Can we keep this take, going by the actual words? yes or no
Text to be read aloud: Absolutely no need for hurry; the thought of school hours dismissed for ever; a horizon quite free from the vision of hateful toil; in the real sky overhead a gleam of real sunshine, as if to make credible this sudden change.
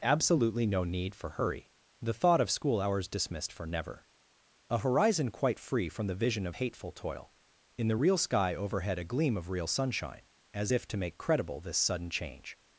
no